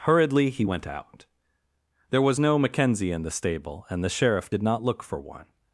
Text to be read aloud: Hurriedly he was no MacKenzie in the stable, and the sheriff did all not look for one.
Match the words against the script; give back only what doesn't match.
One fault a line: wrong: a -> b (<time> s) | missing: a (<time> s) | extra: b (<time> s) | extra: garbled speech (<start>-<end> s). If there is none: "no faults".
extra: went out There (0.6 s)
missing: all (4.6 s)